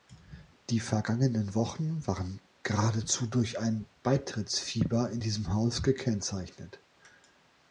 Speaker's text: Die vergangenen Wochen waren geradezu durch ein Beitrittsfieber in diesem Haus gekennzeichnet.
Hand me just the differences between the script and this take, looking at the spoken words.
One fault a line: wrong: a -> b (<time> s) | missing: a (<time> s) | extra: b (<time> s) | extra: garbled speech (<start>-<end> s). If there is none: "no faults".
no faults